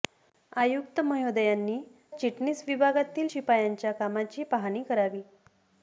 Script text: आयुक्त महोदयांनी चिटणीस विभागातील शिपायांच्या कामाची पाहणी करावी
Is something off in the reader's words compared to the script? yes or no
no